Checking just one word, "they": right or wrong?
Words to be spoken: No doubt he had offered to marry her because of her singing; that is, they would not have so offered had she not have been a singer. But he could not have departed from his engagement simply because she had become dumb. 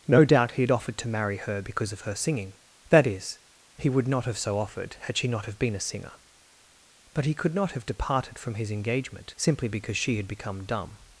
wrong